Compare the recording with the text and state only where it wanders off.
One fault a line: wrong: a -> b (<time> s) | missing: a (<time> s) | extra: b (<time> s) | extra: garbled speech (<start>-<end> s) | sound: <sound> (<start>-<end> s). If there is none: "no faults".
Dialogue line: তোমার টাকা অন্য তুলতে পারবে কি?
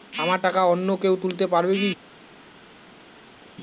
wrong: তোমার -> আমার (0.2 s)
extra: কেউ (1.0 s)